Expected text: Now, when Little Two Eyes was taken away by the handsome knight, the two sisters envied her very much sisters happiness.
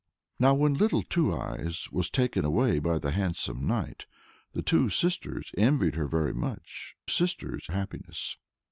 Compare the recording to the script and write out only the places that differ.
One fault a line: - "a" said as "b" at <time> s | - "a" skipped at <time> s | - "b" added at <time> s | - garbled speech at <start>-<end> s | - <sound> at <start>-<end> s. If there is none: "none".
none